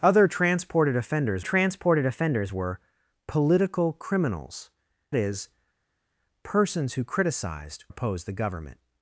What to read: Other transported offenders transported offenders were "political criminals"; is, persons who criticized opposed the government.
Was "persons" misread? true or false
false